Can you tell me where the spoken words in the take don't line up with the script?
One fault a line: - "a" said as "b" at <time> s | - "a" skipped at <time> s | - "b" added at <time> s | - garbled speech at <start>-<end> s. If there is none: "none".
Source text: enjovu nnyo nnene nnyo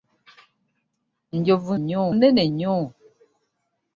none